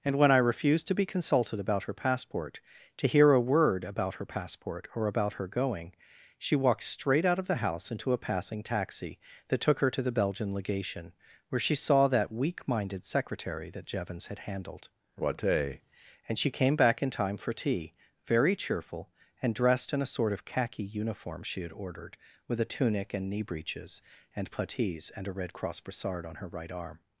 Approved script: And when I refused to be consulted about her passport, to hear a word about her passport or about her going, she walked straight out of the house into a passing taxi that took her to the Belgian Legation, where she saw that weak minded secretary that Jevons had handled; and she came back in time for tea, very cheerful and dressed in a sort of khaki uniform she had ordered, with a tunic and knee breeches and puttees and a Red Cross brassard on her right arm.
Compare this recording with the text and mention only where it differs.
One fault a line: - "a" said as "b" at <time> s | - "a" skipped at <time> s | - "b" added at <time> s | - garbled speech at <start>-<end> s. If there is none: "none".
- "what a" added at 15.2 s